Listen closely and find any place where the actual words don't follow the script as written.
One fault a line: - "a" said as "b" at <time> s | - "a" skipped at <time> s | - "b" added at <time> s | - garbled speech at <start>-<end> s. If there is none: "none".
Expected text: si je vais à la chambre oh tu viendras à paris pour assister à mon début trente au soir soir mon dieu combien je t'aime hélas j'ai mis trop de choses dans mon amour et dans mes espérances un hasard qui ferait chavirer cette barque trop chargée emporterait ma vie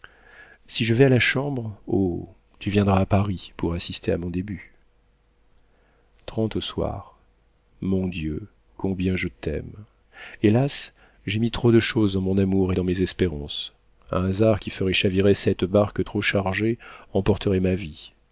- "soir" skipped at 7.2 s